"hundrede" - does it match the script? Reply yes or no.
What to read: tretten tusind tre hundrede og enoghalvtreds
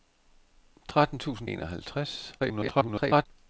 no